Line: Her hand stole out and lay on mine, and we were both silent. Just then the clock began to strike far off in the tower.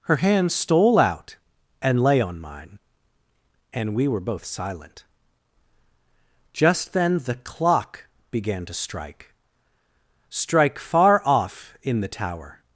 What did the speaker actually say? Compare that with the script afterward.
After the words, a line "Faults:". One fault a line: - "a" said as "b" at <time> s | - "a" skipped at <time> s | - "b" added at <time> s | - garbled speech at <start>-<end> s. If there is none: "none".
Her hand stole out and lay on mine, and we were both silent. Just then the clock began to strike strike far off in the tower.
Faults:
- "strike" added at 10.3 s